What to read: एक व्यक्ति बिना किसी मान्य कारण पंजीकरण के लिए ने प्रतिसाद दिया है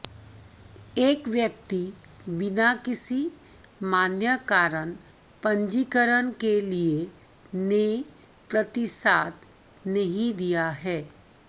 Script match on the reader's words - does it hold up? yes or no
no